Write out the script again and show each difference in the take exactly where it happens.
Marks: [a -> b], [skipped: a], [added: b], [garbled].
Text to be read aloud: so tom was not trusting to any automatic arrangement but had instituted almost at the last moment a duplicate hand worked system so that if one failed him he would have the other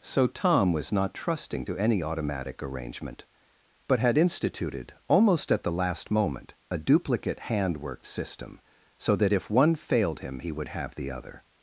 so tom was not trusting to any automatic arrangement but had instituted almost at the last moment a duplicate hand worked system so that if one failed him he would have the other